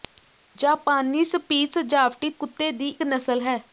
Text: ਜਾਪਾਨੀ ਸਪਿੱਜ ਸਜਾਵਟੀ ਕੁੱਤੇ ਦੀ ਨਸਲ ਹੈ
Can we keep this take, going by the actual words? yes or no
yes